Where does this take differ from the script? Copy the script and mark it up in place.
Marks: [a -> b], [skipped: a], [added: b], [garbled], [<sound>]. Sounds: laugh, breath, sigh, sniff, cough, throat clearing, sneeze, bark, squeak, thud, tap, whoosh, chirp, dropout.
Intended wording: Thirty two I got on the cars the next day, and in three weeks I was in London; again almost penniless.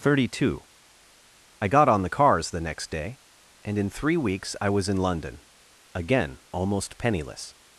Thirty two I got on the cars the next day, and in three weeks I was in London; again almost penniless.